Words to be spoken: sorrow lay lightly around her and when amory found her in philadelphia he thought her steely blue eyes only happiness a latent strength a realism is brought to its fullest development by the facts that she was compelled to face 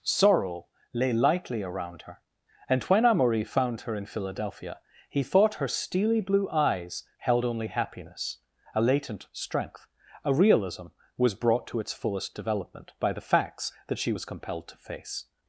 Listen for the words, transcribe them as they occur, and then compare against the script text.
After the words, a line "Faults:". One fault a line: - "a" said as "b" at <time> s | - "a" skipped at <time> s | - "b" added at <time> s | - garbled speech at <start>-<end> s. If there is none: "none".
sorrow lay lightly around her and when amory found her in philadelphia he thought her steely blue eyes held only happiness a latent strength a realism was brought to its fullest development by the facts that she was compelled to face
Faults:
- "held" added at 7.2 s
- "is" said as "was" at 11.2 s